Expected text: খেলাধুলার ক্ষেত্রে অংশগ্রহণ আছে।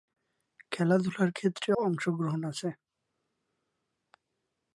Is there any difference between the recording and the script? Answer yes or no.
no